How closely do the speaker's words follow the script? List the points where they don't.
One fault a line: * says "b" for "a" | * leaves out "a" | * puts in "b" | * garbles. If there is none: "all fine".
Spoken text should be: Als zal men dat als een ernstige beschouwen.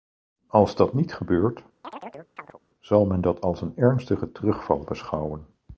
* puts in "dat niet gebeurt"
* puts in "terugval"